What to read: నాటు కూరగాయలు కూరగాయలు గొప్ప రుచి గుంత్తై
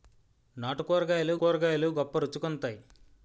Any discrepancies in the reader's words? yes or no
no